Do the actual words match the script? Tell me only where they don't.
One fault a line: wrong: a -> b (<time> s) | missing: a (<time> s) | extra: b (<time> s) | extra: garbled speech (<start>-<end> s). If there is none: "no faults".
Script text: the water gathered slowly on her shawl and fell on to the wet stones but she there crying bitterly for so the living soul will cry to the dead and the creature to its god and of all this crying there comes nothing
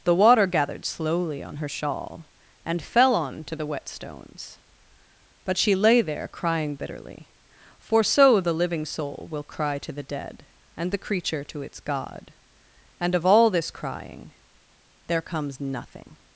extra: lay (5.8 s)